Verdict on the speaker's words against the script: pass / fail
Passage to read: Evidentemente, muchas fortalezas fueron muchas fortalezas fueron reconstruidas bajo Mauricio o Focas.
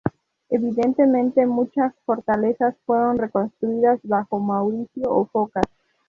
fail